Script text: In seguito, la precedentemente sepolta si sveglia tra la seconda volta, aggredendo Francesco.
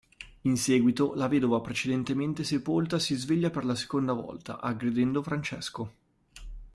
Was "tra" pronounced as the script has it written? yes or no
no